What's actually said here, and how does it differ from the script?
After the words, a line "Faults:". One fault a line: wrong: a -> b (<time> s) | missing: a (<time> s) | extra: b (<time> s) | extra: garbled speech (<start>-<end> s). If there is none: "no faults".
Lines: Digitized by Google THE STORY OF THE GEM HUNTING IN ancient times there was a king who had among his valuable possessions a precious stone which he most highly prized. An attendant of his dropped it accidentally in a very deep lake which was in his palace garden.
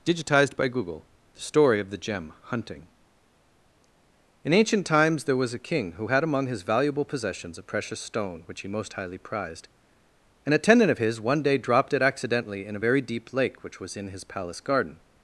Digitized by Google THE STORY OF THE GEM HUNTING IN ancient times there was a king who had among his valuable possessions a precious stone which he most highly prized. An attendant of his one day dropped it accidentally in a very deep lake which was in his palace garden.
Faults:
extra: one day (11.2 s)